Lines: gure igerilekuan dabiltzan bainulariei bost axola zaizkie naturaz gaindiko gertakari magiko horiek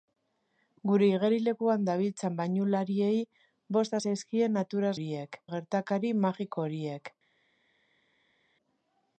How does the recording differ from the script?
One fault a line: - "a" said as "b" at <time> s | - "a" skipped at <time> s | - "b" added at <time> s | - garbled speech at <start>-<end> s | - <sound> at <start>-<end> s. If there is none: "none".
- "axola" skipped at 4.0 s
- "gaindiko" said as "horiek" at 4.9 s